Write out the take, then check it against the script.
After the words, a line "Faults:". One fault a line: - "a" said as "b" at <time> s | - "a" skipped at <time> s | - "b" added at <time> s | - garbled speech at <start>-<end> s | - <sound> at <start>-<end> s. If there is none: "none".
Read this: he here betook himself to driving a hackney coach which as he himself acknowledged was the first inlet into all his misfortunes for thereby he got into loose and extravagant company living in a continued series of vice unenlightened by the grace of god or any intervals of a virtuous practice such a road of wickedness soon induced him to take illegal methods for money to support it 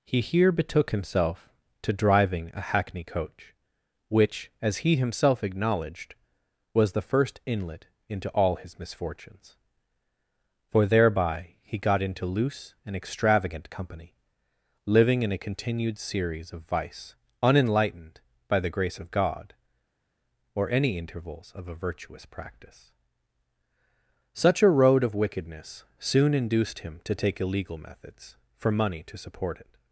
he here betook himself to driving a hackney coach which as he himself acknowledged was the first inlet into all his misfortunes for thereby he got into loose and extravagant company living in a continued series of vice unenlightened by the grace of god or any intervals of a virtuous practice such a road of wickedness soon induced him to take illegal methods for money to support it
Faults:
none